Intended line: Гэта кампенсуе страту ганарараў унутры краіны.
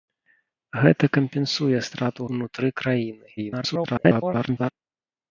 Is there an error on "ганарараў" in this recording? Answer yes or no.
yes